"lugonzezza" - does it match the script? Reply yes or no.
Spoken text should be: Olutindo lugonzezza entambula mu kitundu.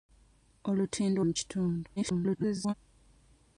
no